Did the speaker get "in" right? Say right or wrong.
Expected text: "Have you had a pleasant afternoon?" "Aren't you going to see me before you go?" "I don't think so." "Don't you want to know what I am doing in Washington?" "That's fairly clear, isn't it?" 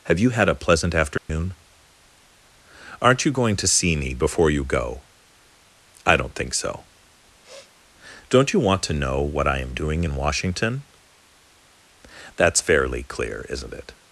right